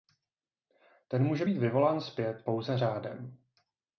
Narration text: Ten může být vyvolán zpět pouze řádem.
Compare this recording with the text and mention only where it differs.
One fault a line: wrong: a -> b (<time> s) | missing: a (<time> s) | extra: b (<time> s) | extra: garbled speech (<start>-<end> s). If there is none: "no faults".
no faults